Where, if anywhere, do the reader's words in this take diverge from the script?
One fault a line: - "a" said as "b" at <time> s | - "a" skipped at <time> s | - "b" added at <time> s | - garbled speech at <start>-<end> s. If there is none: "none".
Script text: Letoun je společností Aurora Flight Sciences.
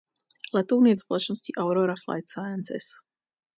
none